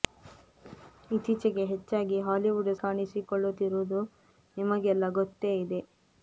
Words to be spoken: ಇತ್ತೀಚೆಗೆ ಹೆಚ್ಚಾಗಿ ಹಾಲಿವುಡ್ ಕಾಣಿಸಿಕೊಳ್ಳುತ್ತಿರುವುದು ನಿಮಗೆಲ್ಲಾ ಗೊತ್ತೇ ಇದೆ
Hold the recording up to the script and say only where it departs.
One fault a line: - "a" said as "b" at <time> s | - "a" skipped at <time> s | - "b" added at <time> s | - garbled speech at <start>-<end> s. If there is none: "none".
none